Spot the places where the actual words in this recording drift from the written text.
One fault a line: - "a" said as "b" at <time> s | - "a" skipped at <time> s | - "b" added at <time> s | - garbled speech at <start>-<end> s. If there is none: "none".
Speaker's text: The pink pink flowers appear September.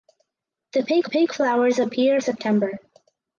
none